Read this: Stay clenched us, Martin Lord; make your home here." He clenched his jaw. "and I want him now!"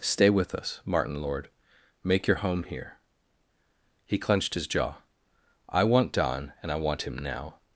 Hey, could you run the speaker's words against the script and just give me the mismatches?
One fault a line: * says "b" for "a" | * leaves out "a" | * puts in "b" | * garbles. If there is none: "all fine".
* says "with" for "clenched"
* puts in "I want Don"